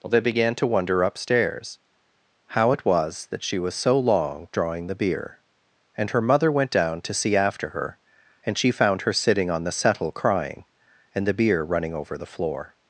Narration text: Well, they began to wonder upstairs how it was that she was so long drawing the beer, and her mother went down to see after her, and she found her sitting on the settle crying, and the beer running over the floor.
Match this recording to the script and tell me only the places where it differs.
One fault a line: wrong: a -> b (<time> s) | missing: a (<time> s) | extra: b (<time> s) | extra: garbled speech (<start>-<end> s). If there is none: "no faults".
missing: Well (0.1 s)